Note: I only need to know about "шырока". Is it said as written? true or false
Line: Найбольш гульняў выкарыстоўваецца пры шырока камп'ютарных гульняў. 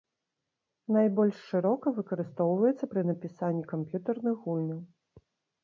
false